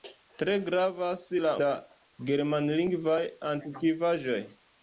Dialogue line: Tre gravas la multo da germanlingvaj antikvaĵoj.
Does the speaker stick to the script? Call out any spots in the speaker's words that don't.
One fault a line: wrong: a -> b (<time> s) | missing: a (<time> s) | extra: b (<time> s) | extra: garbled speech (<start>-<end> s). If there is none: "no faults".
missing: multo (1.5 s)